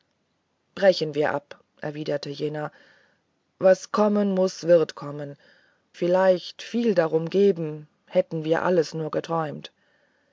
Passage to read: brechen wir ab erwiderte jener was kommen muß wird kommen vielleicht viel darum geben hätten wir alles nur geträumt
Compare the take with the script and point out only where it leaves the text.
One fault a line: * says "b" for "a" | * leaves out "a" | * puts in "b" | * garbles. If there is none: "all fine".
all fine